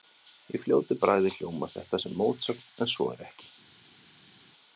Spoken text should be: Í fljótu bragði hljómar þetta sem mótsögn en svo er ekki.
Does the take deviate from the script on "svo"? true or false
false